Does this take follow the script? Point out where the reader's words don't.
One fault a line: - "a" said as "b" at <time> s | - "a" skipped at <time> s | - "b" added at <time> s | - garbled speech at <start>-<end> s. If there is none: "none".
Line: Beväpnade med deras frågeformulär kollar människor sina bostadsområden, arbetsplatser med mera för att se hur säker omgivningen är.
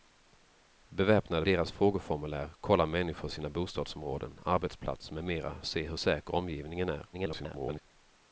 - "med" skipped at 1.4 s
- "för" skipped at 5.6 s
- garbled speech at 7.1-7.8 s